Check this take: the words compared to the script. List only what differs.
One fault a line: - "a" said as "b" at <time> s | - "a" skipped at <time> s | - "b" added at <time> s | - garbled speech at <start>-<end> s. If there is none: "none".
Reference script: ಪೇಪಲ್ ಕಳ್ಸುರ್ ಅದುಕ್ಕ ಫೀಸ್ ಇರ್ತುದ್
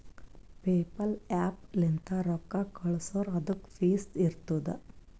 - "ಆ್ಯಪ್ ಲಿಂತ್ ರೊಕ್ಕಾ" added at 1.3 s